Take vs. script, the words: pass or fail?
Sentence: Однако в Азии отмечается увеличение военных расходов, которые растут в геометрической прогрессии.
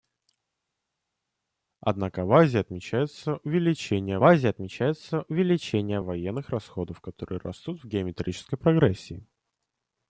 fail